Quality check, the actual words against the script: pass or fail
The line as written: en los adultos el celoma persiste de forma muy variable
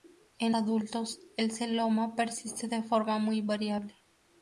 fail